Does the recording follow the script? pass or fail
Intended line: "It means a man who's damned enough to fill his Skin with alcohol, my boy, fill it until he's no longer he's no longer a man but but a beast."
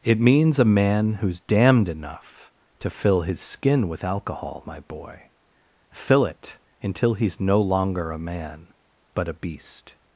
fail